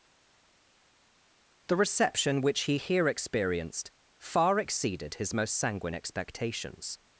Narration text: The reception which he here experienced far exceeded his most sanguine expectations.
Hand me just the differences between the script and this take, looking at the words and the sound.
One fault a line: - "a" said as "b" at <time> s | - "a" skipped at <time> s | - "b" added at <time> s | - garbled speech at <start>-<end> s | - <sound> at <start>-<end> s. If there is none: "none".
none